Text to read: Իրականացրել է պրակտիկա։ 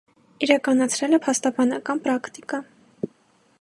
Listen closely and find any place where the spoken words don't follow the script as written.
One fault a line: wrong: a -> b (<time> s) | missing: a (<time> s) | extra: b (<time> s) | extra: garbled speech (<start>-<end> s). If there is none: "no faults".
extra: փաստաբանական (1.3 s)